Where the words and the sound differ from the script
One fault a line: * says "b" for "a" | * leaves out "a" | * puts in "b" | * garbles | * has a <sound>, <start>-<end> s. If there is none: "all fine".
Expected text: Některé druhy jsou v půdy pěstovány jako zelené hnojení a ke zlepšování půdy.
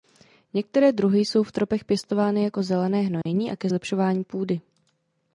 * says "tropech" for "půdy"
* has a dropout, 3.2-3.3 s